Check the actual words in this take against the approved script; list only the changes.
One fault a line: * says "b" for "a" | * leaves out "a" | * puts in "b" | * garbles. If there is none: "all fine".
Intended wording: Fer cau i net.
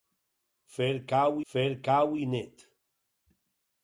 * puts in "fer cau"